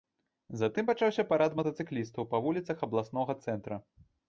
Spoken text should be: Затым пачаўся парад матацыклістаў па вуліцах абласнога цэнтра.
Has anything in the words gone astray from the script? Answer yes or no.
no